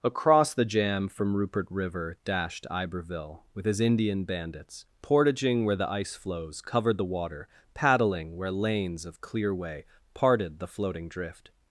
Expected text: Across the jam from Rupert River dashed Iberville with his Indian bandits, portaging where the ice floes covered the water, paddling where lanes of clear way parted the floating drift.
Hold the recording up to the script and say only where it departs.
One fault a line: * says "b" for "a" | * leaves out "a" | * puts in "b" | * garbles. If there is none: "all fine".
all fine